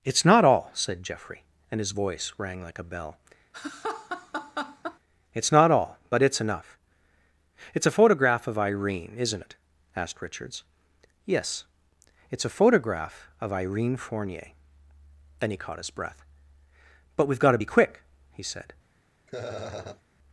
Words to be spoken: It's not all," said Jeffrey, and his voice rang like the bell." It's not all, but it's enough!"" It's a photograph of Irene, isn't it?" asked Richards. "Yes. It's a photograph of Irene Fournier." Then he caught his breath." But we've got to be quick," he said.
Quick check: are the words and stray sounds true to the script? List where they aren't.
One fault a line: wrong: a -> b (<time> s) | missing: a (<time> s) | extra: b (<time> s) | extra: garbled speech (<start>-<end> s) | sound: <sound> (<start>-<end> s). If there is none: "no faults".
wrong: the -> a (2.8 s)
sound: laugh (3.5-5.0 s)
sound: laugh (19.3-20.0 s)